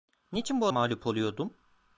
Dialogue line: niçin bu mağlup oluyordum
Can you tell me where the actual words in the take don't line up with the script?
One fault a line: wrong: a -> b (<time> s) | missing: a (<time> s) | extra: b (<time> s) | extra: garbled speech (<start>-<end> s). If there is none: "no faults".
no faults